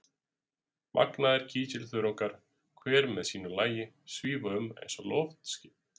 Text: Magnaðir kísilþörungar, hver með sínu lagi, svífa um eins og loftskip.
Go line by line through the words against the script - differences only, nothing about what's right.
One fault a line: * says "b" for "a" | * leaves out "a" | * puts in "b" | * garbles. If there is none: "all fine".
all fine